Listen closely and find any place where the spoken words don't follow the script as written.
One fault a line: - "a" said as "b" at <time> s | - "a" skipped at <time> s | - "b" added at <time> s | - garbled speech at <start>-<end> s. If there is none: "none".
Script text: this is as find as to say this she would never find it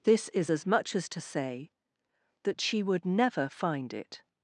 - "find" said as "much" at 0.7 s
- "this" said as "that" at 2.4 s